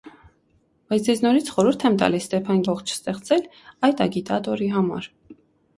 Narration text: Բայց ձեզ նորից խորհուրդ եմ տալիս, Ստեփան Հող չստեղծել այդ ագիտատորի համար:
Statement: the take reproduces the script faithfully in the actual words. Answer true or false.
true